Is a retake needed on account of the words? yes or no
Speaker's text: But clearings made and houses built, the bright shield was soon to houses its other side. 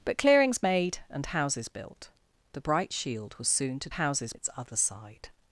no